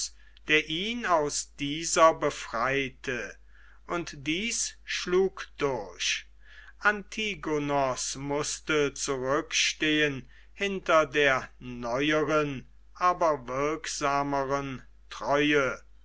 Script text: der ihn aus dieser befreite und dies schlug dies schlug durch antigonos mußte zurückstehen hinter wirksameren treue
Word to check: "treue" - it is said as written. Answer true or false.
true